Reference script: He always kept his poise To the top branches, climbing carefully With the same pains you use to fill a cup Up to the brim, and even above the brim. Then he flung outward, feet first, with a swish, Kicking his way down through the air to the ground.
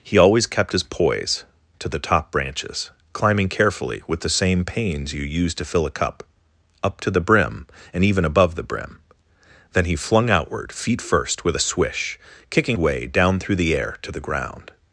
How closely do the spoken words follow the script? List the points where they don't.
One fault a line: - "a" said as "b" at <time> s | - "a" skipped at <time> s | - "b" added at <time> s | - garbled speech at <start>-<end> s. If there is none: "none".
- "his" skipped at 12.8 s